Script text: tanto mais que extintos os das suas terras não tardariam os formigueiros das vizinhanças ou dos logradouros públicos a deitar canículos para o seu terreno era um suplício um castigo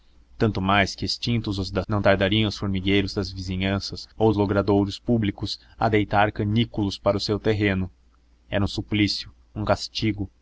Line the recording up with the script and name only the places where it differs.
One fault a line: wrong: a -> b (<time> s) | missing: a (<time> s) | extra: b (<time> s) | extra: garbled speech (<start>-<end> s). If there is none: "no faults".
missing: suas terras (1.9 s)
missing: dos (4.3 s)